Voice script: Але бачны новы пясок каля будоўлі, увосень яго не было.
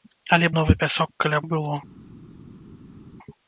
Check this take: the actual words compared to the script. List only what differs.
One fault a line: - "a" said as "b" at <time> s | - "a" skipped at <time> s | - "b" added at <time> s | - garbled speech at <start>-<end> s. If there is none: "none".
- "бачны" skipped at 0.5 s
- "будоўлі увосень яго" skipped at 1.4 s